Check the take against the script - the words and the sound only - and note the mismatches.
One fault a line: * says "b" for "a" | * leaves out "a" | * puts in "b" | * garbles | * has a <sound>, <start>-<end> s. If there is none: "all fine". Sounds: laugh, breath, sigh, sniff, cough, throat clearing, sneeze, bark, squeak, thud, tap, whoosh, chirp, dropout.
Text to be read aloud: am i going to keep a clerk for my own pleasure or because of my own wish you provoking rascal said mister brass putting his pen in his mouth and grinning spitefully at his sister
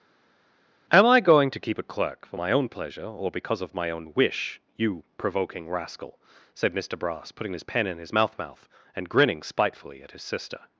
* puts in "mouth"